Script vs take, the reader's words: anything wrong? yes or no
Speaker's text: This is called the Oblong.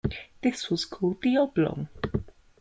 yes